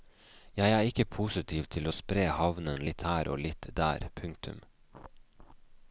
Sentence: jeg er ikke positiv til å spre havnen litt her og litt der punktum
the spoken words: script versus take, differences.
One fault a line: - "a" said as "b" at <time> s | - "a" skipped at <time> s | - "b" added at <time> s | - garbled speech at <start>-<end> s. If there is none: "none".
none